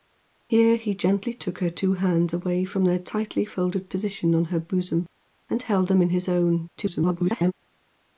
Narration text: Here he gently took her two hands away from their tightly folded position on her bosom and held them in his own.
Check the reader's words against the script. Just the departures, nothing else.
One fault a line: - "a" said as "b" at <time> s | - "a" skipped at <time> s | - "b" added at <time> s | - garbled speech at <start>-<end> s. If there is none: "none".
- garbled speech at 6.8-7.5 s